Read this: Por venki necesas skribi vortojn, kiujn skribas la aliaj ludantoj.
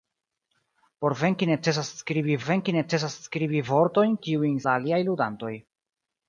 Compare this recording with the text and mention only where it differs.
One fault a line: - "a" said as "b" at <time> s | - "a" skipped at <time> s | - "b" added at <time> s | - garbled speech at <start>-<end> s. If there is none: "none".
- "venki necesas skribi" added at 2.5 s
- "skribas" skipped at 4.6 s